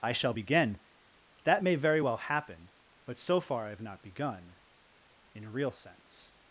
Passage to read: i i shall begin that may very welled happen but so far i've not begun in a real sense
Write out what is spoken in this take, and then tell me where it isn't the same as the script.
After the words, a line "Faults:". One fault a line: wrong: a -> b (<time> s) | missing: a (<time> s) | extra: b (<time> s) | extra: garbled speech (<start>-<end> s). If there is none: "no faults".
i shall begin that may very well happen but so far i've not begun in a real sense
Faults:
missing: i (0.1 s)
wrong: welled -> well (2.0 s)